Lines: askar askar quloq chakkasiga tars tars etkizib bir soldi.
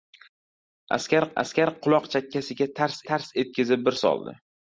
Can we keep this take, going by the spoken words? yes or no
yes